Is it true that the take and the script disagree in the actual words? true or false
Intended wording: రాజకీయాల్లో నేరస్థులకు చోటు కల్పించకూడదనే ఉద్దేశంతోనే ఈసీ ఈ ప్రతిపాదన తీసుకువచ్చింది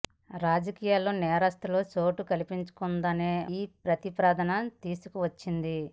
true